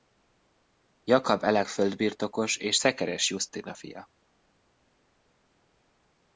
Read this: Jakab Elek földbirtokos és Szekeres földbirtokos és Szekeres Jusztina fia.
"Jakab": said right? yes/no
yes